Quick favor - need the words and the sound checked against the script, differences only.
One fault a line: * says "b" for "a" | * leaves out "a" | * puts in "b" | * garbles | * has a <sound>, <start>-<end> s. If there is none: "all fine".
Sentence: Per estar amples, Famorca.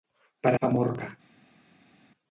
* leaves out "estar amples"